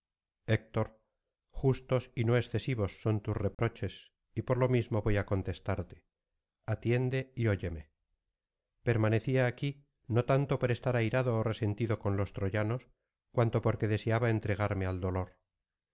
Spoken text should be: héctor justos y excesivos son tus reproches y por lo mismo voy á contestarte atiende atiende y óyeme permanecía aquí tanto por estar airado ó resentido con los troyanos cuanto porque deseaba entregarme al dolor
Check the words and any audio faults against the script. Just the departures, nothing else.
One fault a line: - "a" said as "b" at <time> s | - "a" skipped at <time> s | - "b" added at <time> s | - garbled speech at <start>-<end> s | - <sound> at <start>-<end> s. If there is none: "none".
- "no" added at 2.2 s
- dropout at 3.5-3.6 s
- "atiende" skipped at 7.3 s
- "no" added at 10.1 s